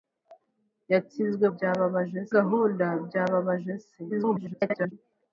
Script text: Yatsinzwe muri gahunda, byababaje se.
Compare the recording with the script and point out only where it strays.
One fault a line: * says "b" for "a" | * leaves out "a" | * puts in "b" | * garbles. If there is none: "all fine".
* says "byababaje" for "muri"
* garbles